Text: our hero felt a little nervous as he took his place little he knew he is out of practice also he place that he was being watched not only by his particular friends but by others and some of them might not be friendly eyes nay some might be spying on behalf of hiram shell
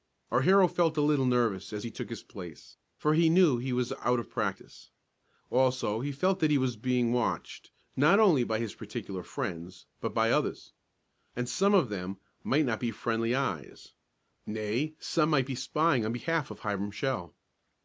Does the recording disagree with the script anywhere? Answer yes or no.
yes